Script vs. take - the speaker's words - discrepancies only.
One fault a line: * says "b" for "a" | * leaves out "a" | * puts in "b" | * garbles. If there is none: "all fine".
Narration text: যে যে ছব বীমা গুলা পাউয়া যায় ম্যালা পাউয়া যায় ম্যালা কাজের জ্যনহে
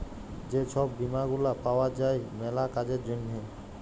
* leaves out "যে"
* leaves out "পাউয়া যায় ম্যালা"